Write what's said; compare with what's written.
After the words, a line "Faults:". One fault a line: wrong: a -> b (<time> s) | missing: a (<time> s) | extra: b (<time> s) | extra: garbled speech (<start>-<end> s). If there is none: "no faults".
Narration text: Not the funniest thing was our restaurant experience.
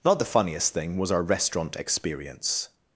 Not the funniest thing was our restaurant experience.
Faults:
no faults